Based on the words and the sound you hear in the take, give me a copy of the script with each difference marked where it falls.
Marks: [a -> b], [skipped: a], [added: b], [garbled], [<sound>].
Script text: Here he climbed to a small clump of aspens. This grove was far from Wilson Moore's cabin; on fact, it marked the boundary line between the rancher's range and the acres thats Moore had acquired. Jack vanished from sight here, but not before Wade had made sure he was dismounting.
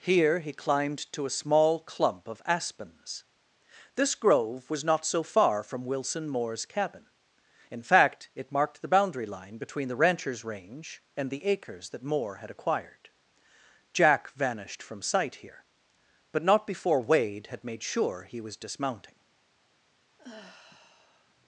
Here he climbed to a small clump of aspens. This grove was [added: not so] far from Wilson Moore's cabin; [on -> in] fact, it marked the boundary line between the rancher's range and the acres [thats -> that] Moore had acquired. Jack vanished from sight here, but not before Wade had made sure he was dismounting. [sigh]